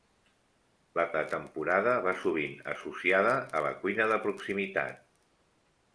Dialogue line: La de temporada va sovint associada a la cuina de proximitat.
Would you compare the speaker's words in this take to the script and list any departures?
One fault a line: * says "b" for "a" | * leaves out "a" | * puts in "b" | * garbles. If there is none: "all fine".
all fine